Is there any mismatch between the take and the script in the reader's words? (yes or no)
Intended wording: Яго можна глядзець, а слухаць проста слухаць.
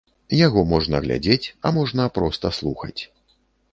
yes